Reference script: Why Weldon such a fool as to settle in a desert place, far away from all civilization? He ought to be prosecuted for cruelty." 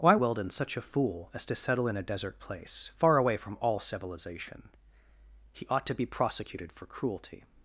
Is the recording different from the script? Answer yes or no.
no